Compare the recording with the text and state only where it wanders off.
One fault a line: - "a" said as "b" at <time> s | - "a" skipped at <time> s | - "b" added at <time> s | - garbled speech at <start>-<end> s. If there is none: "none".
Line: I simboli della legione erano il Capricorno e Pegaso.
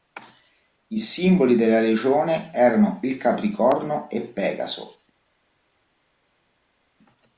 none